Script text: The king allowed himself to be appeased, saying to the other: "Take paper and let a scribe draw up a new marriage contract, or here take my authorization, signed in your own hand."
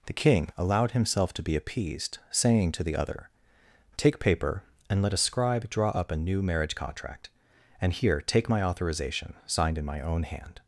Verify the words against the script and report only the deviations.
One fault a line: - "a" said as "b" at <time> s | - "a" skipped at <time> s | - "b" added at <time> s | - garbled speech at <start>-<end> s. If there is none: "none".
- "or" said as "and" at 7.8 s
- "your" said as "my" at 9.8 s